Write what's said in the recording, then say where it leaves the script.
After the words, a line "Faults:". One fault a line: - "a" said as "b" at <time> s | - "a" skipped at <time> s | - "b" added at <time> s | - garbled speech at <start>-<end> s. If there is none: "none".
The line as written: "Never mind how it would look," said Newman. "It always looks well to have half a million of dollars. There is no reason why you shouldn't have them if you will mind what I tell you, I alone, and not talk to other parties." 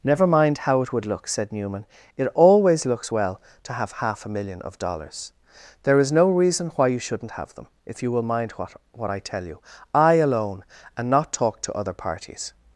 "Never mind how it would look," said Newman. "It always looks well to have half a million of dollars. There is no reason why you shouldn't have them if you will mind what what I tell you, I alone, and not talk to other parties."
Faults:
- "what" added at 8.9 s